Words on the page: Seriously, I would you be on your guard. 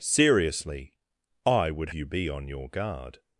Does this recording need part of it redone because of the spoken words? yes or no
no